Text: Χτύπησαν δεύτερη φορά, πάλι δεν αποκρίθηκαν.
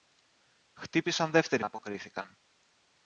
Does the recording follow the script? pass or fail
fail